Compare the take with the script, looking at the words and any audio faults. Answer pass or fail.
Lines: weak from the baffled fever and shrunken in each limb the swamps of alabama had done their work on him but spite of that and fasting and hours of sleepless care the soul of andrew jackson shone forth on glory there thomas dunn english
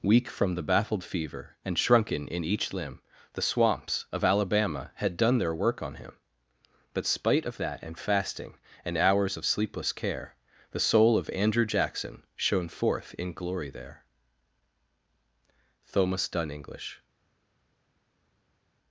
fail